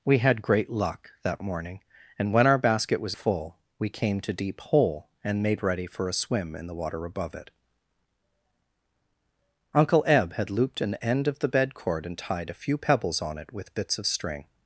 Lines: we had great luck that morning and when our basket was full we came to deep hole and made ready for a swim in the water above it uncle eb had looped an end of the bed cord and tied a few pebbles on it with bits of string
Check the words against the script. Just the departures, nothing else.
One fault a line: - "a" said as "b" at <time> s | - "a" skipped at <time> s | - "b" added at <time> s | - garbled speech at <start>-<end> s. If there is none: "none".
none